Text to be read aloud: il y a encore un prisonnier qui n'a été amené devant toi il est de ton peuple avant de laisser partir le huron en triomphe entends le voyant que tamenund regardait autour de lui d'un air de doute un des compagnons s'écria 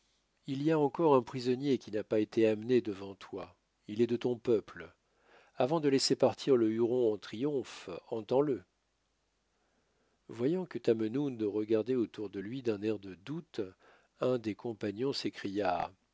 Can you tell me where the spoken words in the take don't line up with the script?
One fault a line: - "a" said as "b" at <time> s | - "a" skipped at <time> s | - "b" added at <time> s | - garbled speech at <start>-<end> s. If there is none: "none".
- "pas" added at 2.0 s